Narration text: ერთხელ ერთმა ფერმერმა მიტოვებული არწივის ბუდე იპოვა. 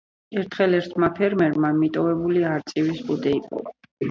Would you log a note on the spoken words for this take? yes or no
no